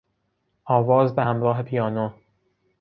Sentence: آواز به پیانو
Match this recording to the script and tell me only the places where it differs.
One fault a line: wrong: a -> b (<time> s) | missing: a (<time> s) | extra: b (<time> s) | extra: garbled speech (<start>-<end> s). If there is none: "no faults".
extra: همراه (1.2 s)